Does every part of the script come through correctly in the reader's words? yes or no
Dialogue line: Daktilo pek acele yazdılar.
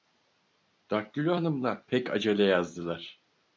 no